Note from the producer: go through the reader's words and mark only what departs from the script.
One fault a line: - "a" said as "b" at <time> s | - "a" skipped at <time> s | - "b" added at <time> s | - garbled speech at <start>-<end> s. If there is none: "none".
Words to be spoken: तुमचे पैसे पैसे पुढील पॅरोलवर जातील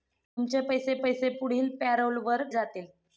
none